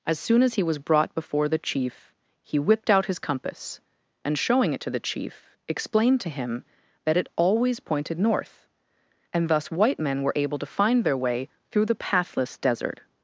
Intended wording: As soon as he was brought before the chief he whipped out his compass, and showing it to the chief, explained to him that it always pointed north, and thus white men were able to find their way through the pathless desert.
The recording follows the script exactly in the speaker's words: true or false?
true